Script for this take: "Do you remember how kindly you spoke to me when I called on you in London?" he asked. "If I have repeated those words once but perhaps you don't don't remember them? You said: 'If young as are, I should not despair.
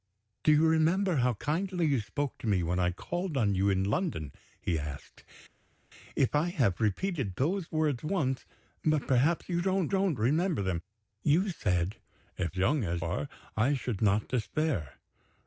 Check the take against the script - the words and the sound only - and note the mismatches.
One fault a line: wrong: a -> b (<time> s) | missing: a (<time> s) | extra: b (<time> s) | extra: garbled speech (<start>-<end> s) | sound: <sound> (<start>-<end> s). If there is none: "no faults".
no faults